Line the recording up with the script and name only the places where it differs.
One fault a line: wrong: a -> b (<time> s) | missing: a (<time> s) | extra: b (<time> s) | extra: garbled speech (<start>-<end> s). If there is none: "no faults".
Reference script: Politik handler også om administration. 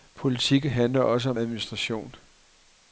no faults